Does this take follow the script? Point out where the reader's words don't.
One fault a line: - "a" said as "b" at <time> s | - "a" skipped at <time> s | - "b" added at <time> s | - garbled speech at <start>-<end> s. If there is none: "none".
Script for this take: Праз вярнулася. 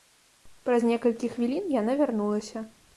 - "некалькі хвілін яна" added at 0.9 s